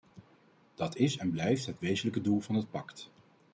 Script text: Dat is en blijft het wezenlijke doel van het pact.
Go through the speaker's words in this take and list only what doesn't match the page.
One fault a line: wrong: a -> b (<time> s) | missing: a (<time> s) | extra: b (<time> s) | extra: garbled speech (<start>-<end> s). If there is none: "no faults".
no faults